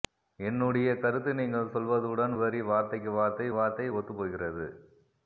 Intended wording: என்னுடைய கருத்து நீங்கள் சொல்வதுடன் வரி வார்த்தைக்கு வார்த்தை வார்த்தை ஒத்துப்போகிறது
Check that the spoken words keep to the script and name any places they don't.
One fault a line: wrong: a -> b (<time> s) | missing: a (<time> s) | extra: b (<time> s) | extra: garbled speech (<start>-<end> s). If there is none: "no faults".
no faults